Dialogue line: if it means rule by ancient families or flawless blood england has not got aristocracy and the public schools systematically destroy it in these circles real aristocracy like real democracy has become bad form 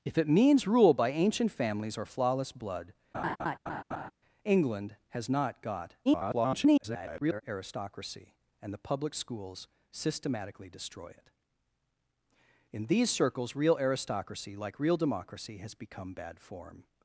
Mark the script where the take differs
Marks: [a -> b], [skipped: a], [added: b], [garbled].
if it means rule by ancient families or flawless blood england has not got [garbled] aristocracy and the public schools systematically destroy it in these circles real aristocracy like real democracy has become bad form